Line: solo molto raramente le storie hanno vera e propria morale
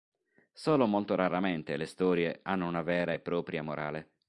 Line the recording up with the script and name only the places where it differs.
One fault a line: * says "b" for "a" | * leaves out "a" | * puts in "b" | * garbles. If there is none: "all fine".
* puts in "una"